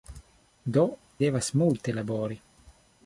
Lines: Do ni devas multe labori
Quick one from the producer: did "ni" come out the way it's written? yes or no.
no